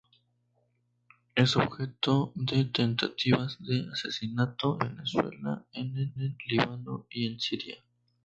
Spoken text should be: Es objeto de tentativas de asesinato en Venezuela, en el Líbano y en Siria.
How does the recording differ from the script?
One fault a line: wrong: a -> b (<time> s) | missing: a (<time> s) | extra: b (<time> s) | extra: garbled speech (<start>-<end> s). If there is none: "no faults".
missing: en (4.8 s)
extra: el (6.2 s)